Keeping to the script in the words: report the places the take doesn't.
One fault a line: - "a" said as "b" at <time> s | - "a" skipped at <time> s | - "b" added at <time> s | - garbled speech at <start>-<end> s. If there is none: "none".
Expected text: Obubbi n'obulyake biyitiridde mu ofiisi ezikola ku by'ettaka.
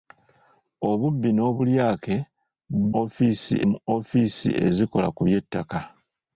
- "biyitiridde" said as "ofiisi" at 3.0 s